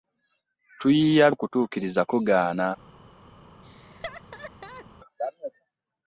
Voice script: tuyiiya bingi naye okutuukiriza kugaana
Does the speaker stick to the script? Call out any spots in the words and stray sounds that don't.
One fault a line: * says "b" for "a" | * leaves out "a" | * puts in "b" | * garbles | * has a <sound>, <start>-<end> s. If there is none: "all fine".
* leaves out "bingi naye"
* has a laugh, 3.6-4.9 s